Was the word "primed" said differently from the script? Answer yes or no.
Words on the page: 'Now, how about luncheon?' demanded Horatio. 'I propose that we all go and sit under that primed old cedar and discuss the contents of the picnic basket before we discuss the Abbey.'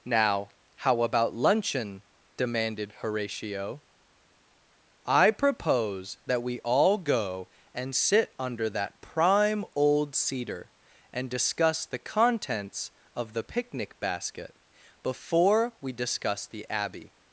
yes